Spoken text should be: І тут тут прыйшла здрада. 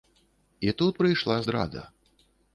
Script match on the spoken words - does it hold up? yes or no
no